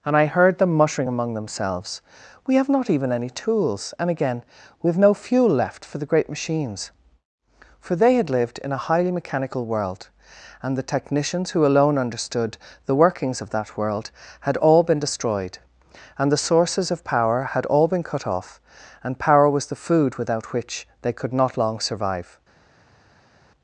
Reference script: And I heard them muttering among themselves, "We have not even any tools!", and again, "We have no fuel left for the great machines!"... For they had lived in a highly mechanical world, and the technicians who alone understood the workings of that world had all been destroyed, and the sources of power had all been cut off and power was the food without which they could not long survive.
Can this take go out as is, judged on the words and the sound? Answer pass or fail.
pass